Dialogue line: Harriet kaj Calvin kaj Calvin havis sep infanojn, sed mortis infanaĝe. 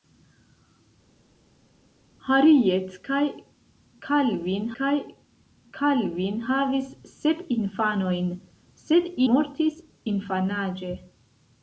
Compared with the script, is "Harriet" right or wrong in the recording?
right